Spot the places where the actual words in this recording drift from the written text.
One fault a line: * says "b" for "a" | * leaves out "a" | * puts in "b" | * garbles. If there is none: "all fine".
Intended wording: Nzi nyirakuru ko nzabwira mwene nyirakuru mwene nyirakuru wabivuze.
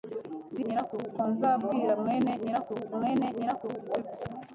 all fine